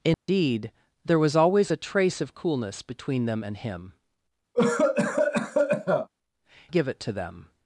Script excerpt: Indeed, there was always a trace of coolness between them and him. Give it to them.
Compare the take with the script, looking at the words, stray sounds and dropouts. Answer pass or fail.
fail